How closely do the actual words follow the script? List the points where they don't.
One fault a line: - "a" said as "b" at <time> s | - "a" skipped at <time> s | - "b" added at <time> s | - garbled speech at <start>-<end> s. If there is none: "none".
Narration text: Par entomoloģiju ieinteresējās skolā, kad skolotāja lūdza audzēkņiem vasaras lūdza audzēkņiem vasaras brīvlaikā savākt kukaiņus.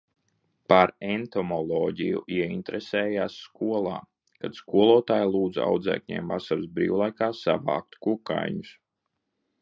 - "lūdza audzēkņiem vasaras" skipped at 6.7 s